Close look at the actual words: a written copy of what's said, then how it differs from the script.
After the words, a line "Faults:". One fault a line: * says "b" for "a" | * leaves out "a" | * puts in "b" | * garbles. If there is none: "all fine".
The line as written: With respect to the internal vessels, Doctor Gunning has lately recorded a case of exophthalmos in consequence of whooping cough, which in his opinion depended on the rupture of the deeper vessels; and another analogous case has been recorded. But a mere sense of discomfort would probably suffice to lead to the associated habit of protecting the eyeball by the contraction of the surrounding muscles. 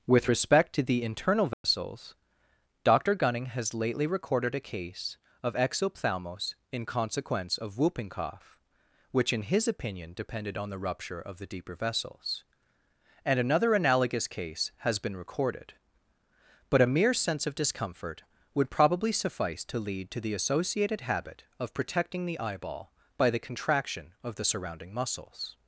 With respect to the internal vessels, Doctor Gunning has lately recorded a case of exophthalmos in consequence of whooping cough, which in his opinion depended on the rupture of the deeper vessels; and another analogous case has been recorded. But a mere sense of discomfort would probably suffice to lead to the associated habit of protecting the eyeball by the contraction of the surrounding muscles.
Faults:
all fine